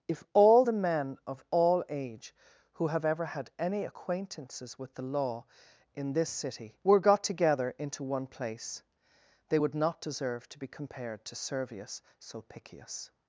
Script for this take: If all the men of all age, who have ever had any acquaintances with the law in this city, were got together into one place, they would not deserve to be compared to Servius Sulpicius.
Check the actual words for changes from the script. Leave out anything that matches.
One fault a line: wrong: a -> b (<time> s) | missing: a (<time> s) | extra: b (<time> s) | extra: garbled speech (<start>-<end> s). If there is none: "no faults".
no faults